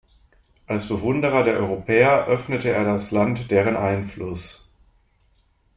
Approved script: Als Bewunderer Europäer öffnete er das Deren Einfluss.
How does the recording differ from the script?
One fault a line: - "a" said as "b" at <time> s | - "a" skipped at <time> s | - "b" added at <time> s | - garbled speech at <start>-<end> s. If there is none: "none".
- "der" added at 1.4 s
- "Land" added at 3.1 s